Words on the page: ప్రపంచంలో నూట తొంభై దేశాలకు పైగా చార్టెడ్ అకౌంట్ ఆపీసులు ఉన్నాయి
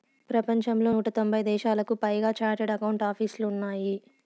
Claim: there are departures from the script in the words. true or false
false